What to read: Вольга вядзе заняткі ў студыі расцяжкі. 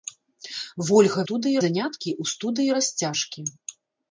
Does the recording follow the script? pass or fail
fail